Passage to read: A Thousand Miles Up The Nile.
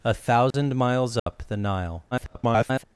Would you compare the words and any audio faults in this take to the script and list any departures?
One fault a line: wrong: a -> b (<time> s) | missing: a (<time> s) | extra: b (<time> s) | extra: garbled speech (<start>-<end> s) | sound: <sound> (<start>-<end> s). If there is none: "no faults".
sound: dropout (0.5-0.5 s)
sound: dropout (1.2-1.3 s)
extra: garbled speech (2.1-2.8 s)